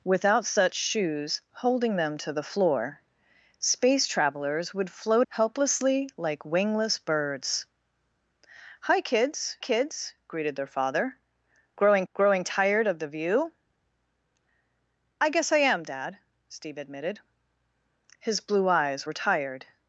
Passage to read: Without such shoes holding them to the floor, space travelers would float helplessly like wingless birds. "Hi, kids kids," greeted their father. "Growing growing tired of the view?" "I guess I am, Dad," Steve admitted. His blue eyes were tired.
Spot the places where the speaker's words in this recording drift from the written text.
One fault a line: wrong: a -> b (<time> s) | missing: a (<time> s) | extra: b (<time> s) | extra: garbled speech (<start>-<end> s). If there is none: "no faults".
no faults